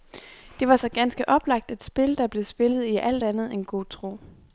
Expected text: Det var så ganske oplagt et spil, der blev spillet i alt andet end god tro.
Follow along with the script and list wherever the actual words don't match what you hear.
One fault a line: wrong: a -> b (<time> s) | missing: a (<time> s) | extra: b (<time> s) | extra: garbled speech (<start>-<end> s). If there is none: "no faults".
no faults